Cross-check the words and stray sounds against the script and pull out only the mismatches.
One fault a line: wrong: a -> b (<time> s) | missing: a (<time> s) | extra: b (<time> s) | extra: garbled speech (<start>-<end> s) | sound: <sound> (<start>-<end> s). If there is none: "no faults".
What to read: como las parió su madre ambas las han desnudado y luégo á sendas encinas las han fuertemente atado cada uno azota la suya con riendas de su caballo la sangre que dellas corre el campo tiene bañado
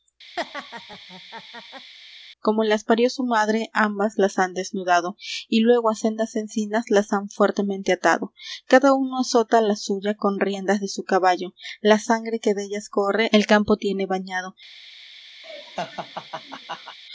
sound: laugh (0.4-1.9 s)
sound: laugh (15.4-17.0 s)